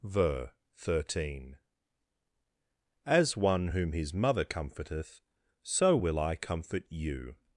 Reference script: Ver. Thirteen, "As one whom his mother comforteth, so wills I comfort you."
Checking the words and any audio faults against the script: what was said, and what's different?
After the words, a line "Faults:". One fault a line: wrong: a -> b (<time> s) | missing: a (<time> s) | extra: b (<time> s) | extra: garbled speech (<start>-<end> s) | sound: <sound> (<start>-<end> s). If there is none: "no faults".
Ver. Thirteen, "As one whom his mother comforteth, so will I comfort you."
Faults:
wrong: wills -> will (6.0 s)